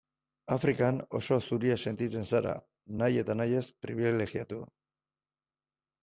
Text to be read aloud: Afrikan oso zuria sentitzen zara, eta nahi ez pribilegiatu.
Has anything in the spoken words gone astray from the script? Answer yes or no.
yes